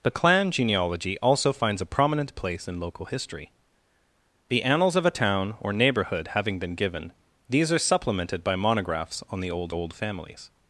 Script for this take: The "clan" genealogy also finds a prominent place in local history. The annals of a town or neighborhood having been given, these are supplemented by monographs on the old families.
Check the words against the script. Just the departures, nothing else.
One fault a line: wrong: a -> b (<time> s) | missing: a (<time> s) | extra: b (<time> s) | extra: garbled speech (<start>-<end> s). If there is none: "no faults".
extra: old (9.7 s)